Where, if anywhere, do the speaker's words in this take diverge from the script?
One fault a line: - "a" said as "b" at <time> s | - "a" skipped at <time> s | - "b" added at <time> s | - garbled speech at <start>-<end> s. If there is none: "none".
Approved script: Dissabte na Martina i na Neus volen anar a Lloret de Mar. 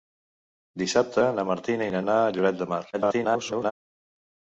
- "Neus volen" skipped at 2.0 s
- garbled speech at 2.9-3.7 s